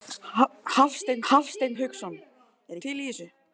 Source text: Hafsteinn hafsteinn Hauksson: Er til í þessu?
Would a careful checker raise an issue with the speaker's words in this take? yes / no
no